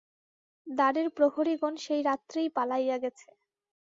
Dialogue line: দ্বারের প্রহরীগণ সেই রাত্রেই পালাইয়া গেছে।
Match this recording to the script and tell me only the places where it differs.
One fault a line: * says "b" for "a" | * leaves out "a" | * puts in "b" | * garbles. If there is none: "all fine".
all fine